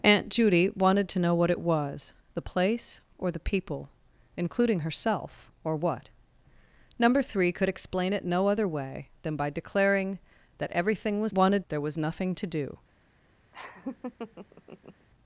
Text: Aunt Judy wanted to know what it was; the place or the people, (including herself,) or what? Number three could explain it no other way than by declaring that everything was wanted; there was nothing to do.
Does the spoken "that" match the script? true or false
true